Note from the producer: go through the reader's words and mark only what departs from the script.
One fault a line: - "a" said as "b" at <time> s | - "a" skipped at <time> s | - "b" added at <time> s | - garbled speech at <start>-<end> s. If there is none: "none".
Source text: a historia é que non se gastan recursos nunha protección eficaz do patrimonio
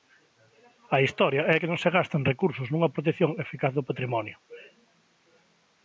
none